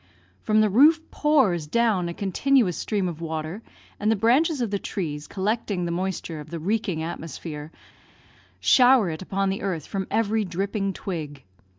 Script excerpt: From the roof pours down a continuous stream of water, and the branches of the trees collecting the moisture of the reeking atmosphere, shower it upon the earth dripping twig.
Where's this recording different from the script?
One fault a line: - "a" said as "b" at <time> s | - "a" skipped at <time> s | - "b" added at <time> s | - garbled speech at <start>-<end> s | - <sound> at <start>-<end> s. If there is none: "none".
- "from every" added at 9.9 s